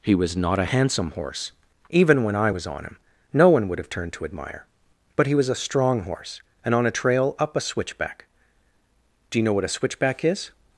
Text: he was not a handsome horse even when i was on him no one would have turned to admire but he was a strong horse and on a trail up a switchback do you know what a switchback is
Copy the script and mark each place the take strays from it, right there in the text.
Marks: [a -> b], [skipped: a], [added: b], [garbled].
he was not a handsome horse even when i was on him no one would have turned to admire but he was a strong horse and on a trail up a switchback do you know what a switchback is